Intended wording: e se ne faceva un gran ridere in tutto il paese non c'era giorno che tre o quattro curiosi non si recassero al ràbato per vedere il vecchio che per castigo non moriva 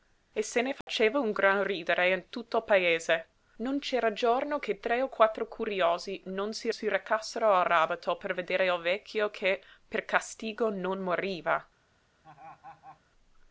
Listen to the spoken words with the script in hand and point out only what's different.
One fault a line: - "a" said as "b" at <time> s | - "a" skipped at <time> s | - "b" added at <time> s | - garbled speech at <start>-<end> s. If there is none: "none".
- "si" added at 6.7 s